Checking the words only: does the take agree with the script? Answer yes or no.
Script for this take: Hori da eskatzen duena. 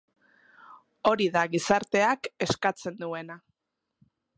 no